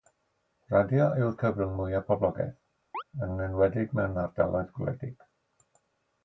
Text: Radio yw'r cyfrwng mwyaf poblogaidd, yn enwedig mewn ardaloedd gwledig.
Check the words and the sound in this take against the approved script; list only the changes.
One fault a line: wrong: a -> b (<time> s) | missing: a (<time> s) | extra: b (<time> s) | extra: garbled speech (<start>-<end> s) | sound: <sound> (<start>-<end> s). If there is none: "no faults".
sound: chirp (2.9-3.0 s)